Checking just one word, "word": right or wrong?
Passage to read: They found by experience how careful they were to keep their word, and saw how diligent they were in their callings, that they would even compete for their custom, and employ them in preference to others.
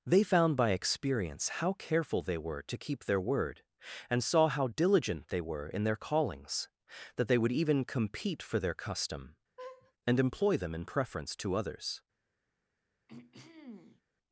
right